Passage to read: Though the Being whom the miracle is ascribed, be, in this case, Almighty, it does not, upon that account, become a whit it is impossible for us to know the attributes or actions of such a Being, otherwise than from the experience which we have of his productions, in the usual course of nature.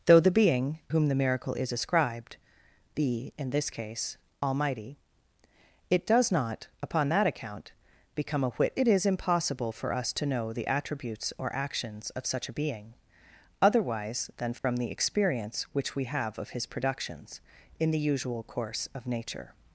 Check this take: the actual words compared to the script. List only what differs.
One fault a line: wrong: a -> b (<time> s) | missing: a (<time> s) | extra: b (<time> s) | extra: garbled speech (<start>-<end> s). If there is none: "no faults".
no faults